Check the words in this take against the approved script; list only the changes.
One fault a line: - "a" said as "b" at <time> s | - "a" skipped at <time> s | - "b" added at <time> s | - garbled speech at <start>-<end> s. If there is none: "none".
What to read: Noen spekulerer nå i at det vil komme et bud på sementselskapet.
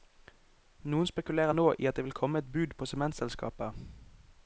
none